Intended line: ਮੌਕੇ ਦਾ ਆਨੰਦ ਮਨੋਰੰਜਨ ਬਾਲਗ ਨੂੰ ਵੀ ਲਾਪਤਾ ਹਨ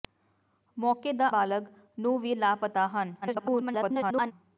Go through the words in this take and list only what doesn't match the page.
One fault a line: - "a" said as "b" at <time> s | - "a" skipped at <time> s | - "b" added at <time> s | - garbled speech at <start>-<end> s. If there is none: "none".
- "ਆਨੰਦ ਮਨੋਰੰਜਨ" skipped at 1.3 s
- garbled speech at 3.2-4.3 s